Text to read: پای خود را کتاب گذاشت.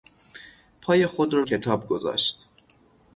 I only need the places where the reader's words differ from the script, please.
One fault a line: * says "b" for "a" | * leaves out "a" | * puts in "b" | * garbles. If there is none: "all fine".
all fine